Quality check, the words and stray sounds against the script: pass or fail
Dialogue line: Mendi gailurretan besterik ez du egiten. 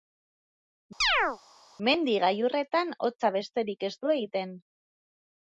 fail